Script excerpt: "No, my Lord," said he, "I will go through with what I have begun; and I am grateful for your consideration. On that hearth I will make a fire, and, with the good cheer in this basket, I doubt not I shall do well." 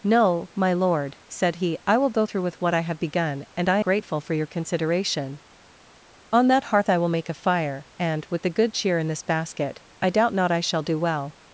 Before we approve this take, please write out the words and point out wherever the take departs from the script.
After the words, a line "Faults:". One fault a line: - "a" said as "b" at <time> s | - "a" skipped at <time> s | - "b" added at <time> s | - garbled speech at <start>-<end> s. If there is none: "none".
"No, my Lord," said he, "I will go through with what I have begun; and I grateful for your consideration. On that hearth I will make a fire, and, with the good cheer in this basket, I doubt not I shall do well."
Faults:
- "am" skipped at 3.8 s